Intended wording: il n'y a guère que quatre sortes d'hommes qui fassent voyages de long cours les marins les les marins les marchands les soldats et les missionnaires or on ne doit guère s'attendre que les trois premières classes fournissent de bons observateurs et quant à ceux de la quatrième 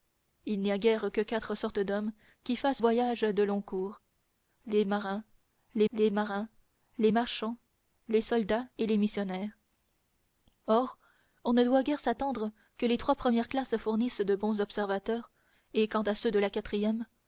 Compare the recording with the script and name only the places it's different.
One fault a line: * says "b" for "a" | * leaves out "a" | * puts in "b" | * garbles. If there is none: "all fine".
all fine